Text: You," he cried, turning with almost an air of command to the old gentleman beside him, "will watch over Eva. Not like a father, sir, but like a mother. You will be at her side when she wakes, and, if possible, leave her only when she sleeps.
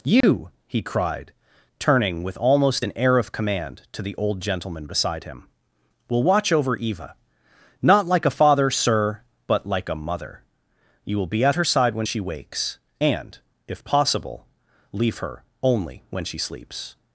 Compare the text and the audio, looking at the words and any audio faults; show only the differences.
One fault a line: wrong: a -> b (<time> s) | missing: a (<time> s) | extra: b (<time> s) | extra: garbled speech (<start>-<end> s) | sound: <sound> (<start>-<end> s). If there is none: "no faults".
sound: dropout (0.2-0.2 s)